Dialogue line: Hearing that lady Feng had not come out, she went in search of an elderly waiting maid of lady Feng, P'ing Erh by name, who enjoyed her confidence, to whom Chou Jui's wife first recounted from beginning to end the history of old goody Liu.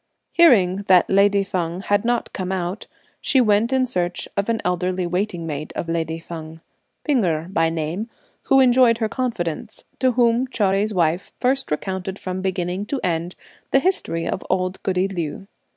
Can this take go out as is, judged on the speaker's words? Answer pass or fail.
pass